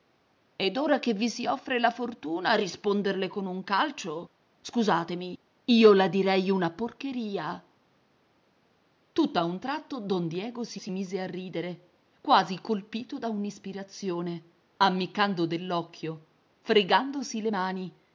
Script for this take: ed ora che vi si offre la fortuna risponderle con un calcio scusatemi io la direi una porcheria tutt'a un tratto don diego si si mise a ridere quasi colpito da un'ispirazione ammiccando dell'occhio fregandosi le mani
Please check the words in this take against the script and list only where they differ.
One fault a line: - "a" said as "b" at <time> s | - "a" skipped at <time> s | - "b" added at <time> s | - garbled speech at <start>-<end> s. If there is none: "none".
none